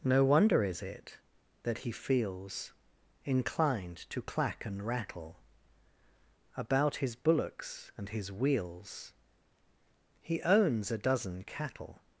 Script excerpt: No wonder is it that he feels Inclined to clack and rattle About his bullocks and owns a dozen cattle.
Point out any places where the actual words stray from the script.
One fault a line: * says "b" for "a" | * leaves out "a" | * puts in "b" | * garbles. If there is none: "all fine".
* puts in "his wheels He"